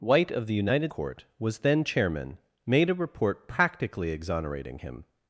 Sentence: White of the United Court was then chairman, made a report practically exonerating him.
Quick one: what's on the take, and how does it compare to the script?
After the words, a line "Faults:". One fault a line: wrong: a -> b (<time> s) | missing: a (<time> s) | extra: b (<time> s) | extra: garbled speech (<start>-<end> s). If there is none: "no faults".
White of the United Court was then chairman, made a report practically exonerating him.
Faults:
no faults